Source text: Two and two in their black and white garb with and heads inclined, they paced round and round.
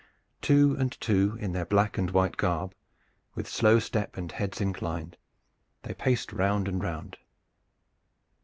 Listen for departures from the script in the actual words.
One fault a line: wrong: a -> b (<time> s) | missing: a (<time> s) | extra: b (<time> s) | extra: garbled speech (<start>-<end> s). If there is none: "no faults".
extra: slow step (3.5 s)